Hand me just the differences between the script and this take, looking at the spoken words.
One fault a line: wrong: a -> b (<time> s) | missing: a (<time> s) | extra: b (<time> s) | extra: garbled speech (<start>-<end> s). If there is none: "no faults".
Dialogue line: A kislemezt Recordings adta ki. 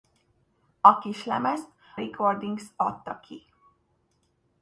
no faults